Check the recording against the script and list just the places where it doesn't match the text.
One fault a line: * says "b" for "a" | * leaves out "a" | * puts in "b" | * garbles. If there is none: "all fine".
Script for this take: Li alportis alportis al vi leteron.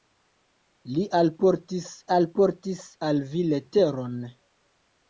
all fine